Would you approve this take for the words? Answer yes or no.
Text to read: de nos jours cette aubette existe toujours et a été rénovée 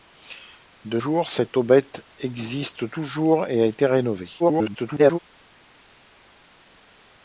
no